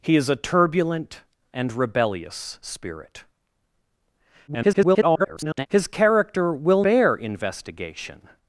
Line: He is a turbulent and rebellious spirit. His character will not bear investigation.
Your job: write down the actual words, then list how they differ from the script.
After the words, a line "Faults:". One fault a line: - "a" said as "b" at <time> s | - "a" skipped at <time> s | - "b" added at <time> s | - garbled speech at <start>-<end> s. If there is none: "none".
He is a turbulent and rebellious spirit. [garbled] His character will bear investigation.
Faults:
- garbled speech at 4.5-5.7 s
- "not" skipped at 6.8 s